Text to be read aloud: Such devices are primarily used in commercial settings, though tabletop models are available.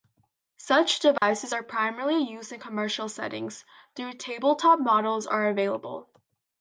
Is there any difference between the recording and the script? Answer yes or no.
no